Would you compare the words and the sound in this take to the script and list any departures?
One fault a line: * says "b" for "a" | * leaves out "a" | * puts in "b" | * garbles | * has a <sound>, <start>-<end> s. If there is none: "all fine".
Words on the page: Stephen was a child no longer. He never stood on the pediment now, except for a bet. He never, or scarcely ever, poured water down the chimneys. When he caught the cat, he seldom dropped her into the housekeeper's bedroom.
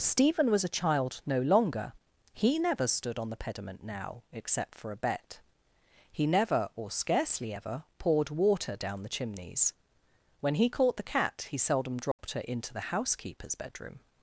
* has a dropout, 12.1-12.2 s